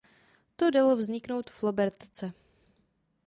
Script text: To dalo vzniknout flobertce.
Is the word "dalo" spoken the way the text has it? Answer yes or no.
yes